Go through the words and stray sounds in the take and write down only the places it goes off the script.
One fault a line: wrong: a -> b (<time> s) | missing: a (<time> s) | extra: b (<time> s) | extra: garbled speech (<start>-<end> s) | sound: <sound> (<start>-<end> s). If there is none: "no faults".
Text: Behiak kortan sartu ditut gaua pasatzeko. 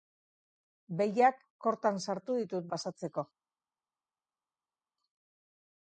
missing: gaua (2.7 s)